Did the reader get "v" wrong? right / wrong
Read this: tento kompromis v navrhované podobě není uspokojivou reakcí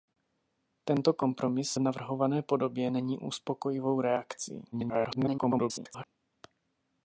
wrong